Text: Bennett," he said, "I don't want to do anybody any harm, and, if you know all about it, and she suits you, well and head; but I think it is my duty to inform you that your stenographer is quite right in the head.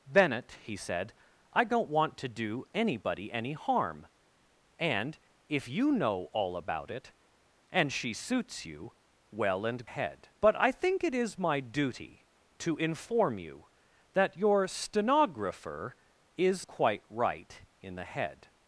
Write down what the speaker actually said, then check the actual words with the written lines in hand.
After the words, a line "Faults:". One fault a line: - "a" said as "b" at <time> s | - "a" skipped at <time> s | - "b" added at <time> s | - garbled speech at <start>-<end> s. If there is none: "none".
Bennett," he said, "I don't want to do anybody any harm, and, if you know all about it, and she suits you, well and head; but I think it is my duty to inform you that your stenographer is quite right in the head.
Faults:
none